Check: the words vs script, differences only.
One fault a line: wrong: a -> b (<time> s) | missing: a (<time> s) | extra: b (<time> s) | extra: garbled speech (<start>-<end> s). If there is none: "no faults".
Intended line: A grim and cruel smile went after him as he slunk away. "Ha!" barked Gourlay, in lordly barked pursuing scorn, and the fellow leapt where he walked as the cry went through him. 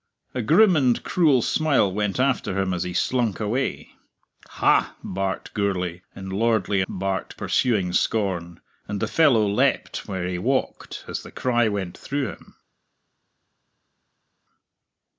no faults